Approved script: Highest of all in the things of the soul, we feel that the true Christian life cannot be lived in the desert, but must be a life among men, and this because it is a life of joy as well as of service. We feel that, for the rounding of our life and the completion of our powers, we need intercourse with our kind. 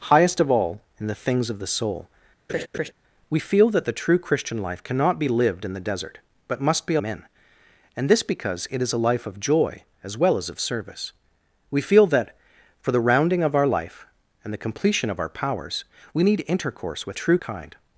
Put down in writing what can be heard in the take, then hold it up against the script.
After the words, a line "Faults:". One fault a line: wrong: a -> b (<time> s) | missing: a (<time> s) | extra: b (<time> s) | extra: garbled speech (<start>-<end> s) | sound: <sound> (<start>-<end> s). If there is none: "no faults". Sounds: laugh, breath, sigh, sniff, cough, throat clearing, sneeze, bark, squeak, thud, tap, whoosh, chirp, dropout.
Highest of all in the things of the soul, we feel that the true Christian life cannot be lived in the desert, but must be a men, and this because it is a life of joy as well as of service. We feel that, for the rounding of our life and the completion of our powers, we need intercourse with true kind.
Faults:
sound: laugh (2.5-2.9 s)
missing: life among (7.0 s)
wrong: our -> true (17.1 s)